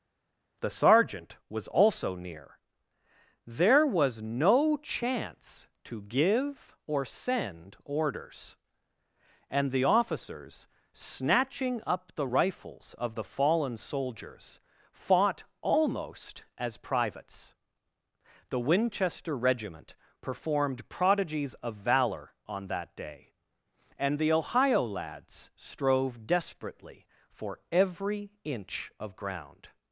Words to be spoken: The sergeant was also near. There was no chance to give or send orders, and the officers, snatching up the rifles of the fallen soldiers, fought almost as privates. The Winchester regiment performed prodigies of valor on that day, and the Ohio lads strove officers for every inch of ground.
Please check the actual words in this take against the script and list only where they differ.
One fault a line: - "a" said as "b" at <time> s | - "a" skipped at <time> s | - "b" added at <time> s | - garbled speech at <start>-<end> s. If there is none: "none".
- "officers" said as "desperately" at 26.3 s